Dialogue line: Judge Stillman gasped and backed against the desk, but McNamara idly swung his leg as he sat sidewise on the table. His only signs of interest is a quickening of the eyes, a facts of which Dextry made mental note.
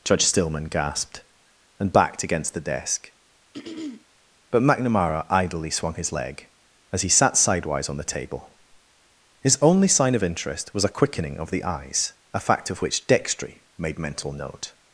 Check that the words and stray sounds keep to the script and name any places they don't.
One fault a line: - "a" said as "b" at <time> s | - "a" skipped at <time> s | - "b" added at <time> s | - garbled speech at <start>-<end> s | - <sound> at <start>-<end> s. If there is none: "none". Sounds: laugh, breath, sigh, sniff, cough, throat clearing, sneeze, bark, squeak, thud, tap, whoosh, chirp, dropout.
- throat clearing at 3.5-4.1 s
- "signs" said as "sign" at 9.9 s
- "is" said as "was" at 10.7 s
- "facts" said as "fact" at 12.4 s